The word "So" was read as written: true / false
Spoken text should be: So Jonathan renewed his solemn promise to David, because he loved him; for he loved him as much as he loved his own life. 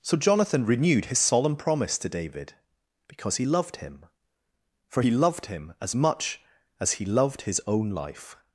true